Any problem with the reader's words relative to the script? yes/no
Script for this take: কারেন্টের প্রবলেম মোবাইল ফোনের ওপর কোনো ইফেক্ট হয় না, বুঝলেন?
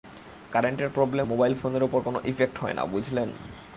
no